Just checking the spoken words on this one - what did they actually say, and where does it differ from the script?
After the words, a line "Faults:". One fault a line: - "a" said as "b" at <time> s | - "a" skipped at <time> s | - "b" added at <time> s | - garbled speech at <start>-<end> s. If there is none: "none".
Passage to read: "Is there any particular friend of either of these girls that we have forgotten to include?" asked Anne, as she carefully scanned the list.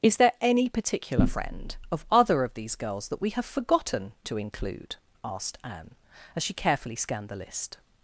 "Is there any particular friend of other of these girls that we have forgotten to include?" asked Anne, as she carefully scanned the list.
Faults:
- "either" said as "other" at 2.1 s